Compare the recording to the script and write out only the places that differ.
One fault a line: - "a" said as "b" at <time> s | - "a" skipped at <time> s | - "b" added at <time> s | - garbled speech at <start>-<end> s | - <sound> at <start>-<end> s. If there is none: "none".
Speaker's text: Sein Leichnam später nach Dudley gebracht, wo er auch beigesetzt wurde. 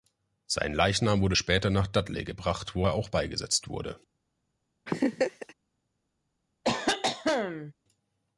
- "wurde" added at 1.2 s
- laugh at 4.9-5.5 s
- cough at 6.6-7.7 s